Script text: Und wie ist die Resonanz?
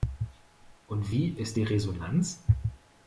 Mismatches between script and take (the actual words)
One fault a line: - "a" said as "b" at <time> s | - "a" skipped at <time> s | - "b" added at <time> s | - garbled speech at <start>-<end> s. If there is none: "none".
none